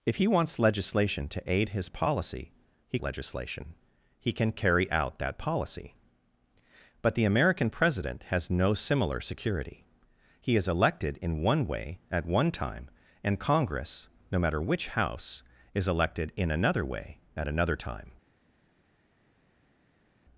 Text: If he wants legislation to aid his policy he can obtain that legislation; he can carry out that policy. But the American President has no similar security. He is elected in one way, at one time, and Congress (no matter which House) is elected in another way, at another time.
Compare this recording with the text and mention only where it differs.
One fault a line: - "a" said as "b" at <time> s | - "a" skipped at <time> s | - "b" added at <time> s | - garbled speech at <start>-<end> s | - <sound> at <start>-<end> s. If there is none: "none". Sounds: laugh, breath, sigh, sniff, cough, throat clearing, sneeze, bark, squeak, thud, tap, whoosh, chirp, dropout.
- "can obtain that" skipped at 3.0 s